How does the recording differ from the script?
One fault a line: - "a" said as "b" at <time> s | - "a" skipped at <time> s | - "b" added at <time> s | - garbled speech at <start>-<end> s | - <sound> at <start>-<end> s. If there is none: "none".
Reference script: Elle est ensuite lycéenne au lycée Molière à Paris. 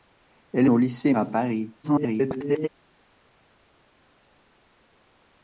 - "est ensuite lycéenne" skipped at 0.7 s
- "Molière" skipped at 1.1 s
- garbled speech at 1.8-2.7 s